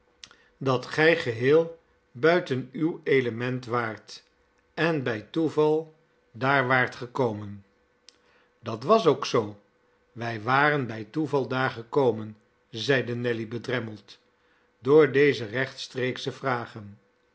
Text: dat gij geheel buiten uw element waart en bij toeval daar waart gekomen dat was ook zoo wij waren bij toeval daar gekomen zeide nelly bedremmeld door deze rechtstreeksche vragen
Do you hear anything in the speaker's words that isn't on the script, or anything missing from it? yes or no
no